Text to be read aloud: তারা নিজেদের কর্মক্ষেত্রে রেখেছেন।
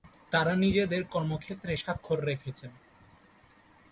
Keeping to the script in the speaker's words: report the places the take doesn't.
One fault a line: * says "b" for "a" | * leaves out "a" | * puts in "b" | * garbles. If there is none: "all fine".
* puts in "স্বাক্ষর"